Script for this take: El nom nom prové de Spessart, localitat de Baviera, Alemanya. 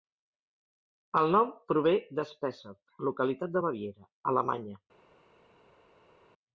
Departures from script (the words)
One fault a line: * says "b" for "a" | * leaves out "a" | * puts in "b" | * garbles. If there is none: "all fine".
* leaves out "nom"